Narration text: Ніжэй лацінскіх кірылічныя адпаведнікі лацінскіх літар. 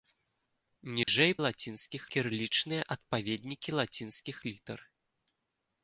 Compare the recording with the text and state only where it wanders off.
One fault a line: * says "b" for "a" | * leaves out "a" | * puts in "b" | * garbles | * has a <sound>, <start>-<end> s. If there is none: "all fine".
* has a dropout, 1.0-1.1 s